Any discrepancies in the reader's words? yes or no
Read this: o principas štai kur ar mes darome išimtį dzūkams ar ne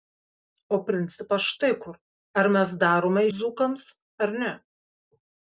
yes